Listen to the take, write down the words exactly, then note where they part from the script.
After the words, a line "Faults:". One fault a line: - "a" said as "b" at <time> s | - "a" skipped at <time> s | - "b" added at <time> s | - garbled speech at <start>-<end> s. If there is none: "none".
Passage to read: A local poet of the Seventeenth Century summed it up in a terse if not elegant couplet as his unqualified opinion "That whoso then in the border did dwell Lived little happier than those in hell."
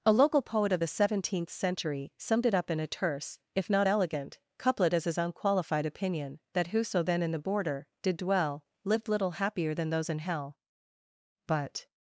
A local poet of the Seventeenth Century summed it up in a terse if not elegant couplet as his unqualified opinion "That whoso then in the border did dwell Lived little happier than those in hell." But
Faults:
- "But" added at 11.5 s